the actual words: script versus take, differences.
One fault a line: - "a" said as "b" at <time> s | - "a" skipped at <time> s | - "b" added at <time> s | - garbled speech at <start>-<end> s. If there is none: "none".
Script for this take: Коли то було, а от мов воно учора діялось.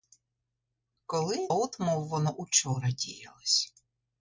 - "то було а" skipped at 1.5 s